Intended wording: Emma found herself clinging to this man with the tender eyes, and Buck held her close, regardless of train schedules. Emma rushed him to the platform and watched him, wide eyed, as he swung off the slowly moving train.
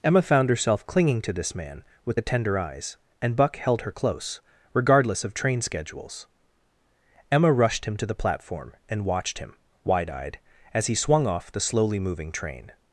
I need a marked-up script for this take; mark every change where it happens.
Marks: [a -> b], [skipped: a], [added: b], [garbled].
Emma found herself clinging to this man with the tender eyes, and Buck held her close, regardless of train schedules. Emma rushed him to the platform and watched him, wide eyed, as he swung off the slowly moving train.